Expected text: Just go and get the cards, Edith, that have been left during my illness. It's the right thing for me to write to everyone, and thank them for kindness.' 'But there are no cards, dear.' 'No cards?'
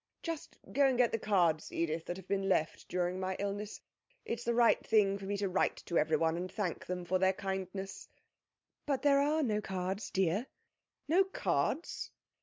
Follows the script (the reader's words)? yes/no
no